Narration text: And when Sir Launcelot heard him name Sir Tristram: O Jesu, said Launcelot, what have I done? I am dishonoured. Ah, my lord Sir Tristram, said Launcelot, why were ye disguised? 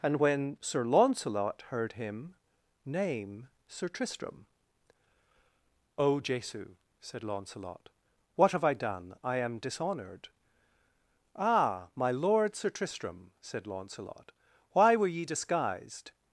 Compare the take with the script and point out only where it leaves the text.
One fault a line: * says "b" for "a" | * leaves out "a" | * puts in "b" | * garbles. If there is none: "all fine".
all fine